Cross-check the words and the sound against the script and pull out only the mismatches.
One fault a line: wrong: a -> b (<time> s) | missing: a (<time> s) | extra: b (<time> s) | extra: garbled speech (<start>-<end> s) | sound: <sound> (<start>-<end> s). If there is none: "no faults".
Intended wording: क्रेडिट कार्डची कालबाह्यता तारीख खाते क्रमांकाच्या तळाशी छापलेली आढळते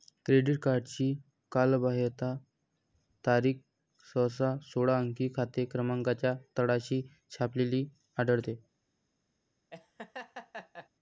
extra: सहसा सोळा अंकी (4.0 s)
sound: laugh (9.7-10.9 s)